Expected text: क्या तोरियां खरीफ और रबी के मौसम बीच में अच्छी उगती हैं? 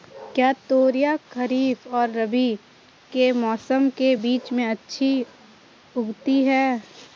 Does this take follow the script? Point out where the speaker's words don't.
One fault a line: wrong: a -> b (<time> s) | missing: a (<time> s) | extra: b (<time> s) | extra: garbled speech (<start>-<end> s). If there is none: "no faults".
extra: के (4.0 s)